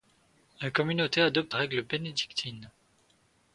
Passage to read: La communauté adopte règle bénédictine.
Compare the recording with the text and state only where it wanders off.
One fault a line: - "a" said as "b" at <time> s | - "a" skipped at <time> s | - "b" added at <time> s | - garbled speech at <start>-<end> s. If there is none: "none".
none